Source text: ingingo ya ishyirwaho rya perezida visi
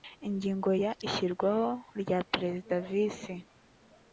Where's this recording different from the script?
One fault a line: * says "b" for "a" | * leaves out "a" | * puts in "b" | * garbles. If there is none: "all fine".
all fine